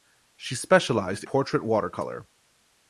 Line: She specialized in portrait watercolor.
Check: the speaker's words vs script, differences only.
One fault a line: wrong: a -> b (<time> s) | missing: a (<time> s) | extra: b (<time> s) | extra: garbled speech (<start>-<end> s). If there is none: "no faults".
missing: in (1.2 s)